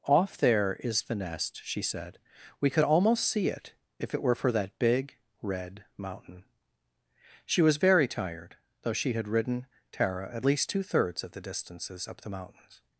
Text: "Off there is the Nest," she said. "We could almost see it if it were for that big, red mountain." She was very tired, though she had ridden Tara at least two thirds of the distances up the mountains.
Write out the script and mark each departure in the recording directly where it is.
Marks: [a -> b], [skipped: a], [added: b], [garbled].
"Off there is the Nest," she said. "We could almost see it if it were for that big, red mountain." She was very tired, though she had ridden Tara at least two thirds of the distances up the mountains.